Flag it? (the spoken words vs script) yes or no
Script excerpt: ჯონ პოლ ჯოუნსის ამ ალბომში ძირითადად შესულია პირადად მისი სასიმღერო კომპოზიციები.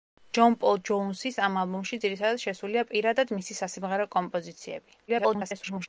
yes